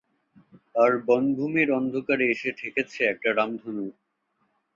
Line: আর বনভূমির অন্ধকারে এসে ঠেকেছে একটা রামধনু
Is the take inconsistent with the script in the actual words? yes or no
no